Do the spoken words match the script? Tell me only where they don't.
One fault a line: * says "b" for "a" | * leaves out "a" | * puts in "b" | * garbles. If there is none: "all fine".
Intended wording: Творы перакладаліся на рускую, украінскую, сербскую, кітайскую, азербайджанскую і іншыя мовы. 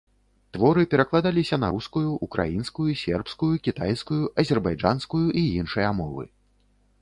all fine